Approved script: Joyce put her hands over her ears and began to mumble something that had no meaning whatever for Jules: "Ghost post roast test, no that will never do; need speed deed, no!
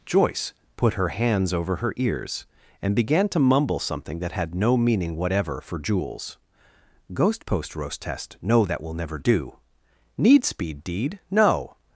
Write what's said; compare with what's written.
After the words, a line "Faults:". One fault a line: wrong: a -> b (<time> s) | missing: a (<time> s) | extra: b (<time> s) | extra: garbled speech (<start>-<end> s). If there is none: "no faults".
Joyce put her hands over her ears and began to mumble something that had no meaning whatever for Jules: "Ghost post roast test, no that will never do; need speed deed, no!
Faults:
no faults